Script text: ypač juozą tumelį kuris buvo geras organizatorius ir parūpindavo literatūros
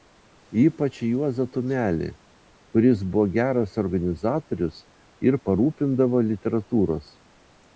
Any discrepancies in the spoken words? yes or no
no